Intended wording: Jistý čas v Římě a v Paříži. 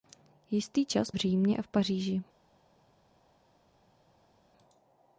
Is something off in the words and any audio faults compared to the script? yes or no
no